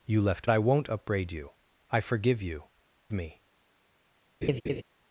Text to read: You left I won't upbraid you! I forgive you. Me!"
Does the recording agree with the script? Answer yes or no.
yes